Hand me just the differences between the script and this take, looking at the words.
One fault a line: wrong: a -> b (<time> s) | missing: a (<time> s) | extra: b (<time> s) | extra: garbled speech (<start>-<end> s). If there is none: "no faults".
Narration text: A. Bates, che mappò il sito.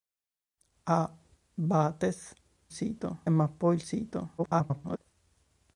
wrong: che -> sito (2.7 s)
extra: garbled speech (4.4-5.0 s)